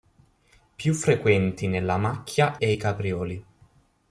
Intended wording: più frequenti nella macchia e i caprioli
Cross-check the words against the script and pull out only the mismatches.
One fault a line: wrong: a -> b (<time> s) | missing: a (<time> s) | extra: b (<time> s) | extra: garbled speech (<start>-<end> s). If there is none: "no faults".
no faults